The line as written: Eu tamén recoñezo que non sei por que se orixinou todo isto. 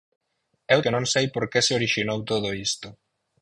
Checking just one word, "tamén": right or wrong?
wrong